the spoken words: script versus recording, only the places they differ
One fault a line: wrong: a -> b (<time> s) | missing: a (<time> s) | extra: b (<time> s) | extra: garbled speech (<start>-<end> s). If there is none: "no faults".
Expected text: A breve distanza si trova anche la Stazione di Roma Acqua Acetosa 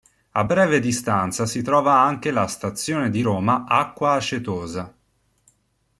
no faults